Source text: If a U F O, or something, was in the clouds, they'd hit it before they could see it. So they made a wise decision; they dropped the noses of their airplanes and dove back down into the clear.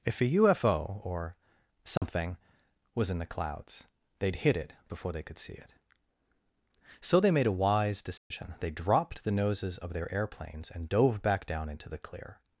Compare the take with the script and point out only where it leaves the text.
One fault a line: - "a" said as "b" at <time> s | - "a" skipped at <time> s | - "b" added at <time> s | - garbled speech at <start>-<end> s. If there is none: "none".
none